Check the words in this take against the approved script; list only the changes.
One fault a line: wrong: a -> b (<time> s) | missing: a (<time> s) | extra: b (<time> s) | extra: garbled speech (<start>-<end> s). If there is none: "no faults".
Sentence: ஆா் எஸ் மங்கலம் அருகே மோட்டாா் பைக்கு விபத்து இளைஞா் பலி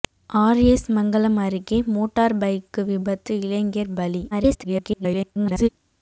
extra: garbled speech (4.3-5.7 s)